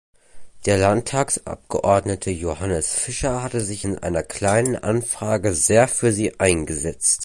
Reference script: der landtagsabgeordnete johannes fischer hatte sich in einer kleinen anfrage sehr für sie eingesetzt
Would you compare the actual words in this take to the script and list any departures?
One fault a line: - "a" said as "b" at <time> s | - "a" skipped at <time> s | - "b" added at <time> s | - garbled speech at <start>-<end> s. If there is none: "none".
none